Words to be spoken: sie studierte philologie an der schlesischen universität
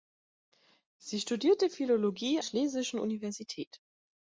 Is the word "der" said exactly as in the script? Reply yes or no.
no